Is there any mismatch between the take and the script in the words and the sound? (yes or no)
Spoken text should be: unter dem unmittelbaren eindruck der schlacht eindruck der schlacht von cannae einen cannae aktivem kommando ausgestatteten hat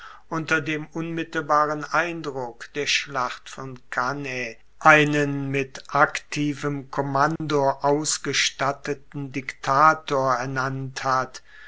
yes